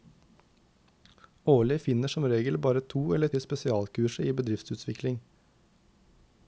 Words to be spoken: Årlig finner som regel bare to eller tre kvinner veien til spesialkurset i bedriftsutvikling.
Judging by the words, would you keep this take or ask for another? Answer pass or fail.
fail